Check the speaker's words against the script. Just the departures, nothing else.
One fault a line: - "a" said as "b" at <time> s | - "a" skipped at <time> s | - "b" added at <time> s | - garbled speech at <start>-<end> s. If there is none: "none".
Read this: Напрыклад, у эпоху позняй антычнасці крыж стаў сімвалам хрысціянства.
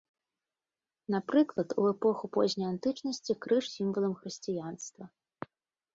- "стаў" skipped at 3.6 s